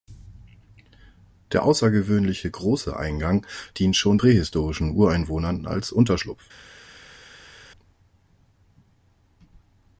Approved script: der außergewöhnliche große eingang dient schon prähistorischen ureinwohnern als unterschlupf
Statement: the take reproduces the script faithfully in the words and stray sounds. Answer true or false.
true